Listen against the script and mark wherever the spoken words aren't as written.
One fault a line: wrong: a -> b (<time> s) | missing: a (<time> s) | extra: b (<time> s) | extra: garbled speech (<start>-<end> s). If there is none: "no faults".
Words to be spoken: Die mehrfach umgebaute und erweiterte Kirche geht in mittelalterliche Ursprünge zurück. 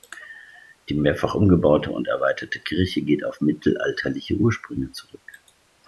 wrong: in -> auf (3.2 s)